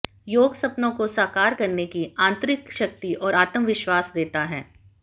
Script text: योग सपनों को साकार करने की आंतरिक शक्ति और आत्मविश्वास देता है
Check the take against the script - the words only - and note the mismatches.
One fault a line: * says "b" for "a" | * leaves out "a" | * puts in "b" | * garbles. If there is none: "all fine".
all fine